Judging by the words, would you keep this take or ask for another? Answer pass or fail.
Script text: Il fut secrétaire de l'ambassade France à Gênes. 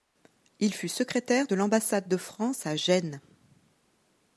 fail